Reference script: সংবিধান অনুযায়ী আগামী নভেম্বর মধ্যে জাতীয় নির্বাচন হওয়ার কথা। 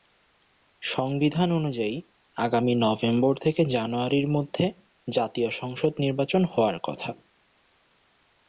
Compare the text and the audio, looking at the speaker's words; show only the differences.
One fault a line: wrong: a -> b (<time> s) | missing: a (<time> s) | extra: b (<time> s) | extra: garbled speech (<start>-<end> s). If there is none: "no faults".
extra: থেকে জানুয়ারির (3.4 s)
extra: সংসদ (5.5 s)